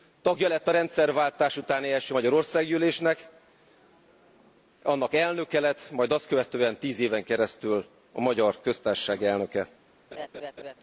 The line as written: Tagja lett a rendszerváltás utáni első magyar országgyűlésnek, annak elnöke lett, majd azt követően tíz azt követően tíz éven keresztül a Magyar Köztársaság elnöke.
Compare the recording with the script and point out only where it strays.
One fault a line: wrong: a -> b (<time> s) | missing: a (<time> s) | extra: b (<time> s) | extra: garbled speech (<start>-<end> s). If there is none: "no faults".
missing: azt követően tíz (7.0 s)